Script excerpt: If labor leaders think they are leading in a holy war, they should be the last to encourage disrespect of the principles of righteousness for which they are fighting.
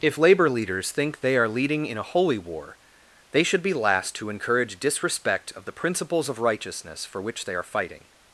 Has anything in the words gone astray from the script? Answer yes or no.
yes